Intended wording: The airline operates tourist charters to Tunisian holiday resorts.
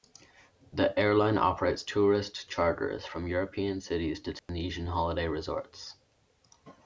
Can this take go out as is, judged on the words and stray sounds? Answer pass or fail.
fail